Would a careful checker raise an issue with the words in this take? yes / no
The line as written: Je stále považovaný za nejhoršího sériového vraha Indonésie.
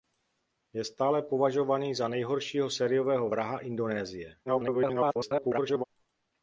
yes